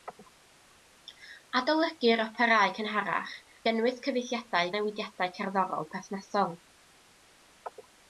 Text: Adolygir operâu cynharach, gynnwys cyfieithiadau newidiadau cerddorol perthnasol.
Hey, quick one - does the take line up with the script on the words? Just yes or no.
yes